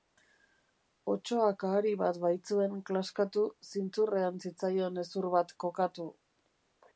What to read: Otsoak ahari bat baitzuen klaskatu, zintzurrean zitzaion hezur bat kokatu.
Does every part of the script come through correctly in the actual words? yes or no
yes